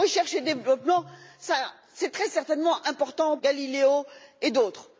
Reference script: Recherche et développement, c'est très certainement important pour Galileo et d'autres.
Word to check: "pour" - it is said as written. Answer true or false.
false